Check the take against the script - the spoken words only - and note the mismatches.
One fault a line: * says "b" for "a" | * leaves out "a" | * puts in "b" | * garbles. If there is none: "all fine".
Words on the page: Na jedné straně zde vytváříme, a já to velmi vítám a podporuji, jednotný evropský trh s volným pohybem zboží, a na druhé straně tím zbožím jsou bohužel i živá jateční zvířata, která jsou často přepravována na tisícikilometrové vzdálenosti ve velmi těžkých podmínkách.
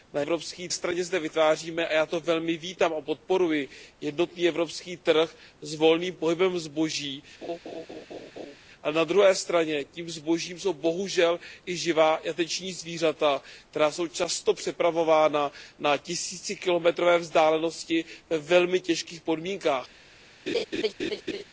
* says "evropský" for "jedné"